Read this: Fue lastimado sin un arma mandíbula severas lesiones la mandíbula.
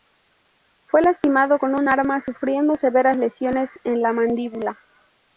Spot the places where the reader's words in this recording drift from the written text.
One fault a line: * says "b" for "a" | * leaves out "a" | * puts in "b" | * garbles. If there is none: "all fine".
* says "con" for "sin"
* says "sufriendo" for "mandíbula"
* puts in "en"